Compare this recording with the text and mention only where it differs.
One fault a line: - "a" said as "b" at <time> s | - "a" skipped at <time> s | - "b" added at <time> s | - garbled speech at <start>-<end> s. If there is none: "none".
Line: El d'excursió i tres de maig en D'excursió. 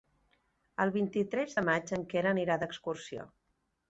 - "d'excursió" said as "vint" at 0.9 s
- "Quer anirà" added at 2.1 s